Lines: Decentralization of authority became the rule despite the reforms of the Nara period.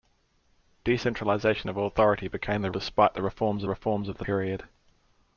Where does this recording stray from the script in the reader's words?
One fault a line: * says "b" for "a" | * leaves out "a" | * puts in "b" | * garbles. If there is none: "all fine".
* leaves out "rule"
* puts in "reforms"
* leaves out "Nara"